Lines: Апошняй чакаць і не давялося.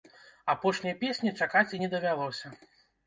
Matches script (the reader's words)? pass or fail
fail